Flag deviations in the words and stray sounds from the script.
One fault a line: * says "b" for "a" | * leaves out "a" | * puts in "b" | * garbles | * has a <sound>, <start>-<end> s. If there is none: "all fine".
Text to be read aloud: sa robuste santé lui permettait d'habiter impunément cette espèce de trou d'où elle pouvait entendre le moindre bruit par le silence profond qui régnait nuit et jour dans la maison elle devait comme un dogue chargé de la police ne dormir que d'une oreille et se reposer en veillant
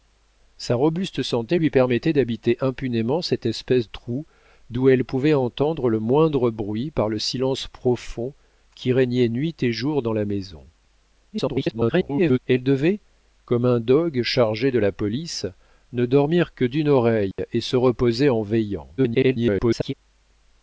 * leaves out "de"
* garbles
* has a dropout, 17.3-17.4 s
* garbles